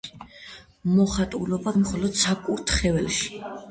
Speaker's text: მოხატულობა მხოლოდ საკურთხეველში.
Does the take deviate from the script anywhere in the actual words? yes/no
no